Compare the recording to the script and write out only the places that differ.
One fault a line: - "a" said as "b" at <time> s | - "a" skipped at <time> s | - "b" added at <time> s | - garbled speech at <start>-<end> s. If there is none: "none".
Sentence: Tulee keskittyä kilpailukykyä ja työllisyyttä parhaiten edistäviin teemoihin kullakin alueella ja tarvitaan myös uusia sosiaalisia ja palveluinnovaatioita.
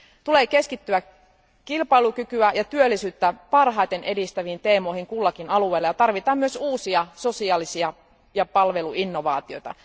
none